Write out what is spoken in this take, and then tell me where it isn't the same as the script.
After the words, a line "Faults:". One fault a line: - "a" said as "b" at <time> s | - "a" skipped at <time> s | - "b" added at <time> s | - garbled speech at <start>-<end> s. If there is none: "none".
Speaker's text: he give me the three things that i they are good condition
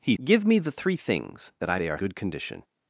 he give me the three things that i they are good condition
Faults:
none